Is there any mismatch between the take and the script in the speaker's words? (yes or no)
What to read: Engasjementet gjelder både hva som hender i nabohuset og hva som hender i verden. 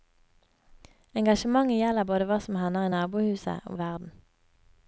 yes